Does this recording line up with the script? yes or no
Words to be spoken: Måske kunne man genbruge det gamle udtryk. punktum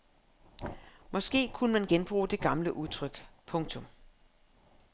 yes